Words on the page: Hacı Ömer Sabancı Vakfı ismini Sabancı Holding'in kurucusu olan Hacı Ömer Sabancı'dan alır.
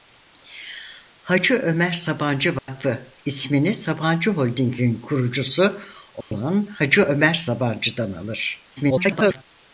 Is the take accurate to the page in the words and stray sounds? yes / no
no